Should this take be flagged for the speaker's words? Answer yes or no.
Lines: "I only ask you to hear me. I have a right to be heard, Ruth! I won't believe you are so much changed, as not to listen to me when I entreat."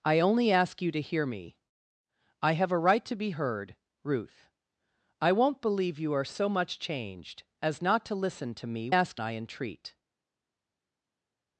yes